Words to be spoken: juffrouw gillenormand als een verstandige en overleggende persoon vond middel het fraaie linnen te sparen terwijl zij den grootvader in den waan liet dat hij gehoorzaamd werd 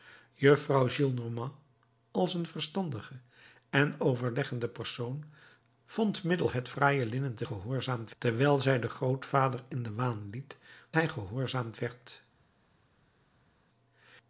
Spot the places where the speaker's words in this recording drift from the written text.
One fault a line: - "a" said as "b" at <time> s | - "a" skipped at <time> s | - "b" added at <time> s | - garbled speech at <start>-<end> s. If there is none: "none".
- "sparen" said as "gehoorzaamd" at 7.4 s
- "dat" skipped at 10.6 s